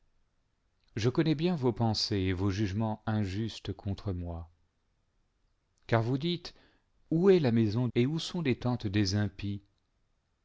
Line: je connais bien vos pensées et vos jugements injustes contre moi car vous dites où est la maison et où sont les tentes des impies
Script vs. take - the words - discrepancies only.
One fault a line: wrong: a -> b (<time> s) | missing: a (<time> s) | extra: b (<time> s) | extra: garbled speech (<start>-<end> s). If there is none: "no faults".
no faults